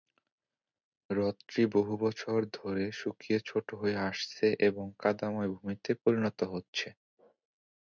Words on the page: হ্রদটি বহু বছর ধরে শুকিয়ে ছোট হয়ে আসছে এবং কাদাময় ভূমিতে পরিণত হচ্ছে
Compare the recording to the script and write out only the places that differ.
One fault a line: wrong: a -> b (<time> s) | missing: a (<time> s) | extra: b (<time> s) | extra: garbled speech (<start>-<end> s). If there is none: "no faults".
no faults